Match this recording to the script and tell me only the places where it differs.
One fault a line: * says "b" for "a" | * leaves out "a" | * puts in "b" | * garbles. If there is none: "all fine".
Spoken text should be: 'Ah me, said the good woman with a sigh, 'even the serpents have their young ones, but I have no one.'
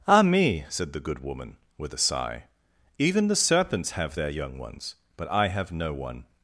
all fine